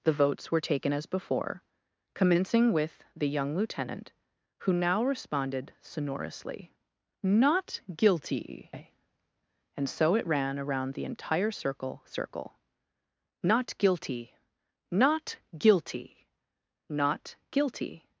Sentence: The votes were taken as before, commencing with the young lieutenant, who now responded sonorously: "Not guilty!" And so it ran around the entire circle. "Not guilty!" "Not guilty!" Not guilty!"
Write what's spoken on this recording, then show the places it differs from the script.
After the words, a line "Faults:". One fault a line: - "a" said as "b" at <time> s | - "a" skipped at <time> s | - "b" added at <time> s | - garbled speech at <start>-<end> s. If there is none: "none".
The votes were taken as before, commencing with the young lieutenant, who now responded sonorously: "Not guilty!" And so it ran around the entire circle circle. "Not guilty!" "Not guilty!" Not guilty!"
Faults:
- "circle" added at 12.0 s